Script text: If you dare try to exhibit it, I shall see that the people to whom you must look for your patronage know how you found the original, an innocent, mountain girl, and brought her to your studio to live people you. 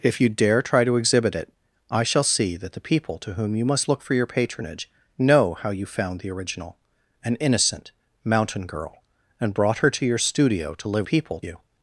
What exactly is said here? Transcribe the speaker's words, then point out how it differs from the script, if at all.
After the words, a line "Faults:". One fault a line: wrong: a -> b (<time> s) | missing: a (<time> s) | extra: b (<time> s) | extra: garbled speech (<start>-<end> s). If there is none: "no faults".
If you dare try to exhibit it, I shall see that the people to whom you must look for your patronage know how you found the original, an innocent, mountain girl, and brought her to your studio to live people you.
Faults:
no faults